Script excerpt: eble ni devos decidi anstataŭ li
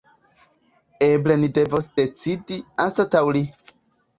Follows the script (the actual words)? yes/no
yes